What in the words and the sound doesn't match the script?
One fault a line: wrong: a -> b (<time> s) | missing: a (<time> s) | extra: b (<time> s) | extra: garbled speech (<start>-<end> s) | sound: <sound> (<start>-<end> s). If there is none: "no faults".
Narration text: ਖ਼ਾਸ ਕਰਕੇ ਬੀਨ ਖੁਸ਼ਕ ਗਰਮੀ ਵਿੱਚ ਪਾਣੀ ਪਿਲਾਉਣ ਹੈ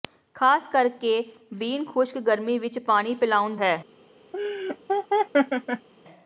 sound: laugh (4.3-5.9 s)